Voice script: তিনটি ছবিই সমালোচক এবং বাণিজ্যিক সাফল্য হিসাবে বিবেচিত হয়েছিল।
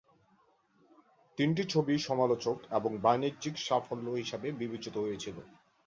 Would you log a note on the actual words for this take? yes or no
no